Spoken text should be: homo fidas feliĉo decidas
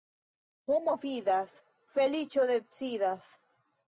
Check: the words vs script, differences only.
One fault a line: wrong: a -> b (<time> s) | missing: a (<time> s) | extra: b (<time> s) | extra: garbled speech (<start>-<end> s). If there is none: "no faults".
no faults